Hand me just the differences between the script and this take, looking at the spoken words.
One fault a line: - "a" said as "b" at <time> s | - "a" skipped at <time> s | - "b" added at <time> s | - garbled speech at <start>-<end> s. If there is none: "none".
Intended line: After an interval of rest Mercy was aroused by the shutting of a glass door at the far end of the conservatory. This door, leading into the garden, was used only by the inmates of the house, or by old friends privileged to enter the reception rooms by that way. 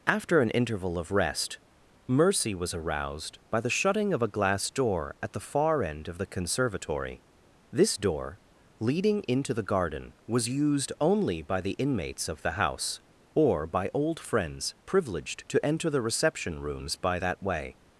none